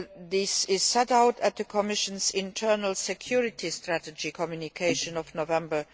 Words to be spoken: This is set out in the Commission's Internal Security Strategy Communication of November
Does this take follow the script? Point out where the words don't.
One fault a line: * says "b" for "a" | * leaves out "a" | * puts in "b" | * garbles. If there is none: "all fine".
all fine